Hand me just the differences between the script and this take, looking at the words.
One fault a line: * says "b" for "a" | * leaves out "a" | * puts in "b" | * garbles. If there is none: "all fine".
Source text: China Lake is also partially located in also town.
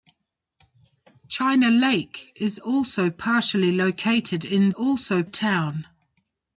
all fine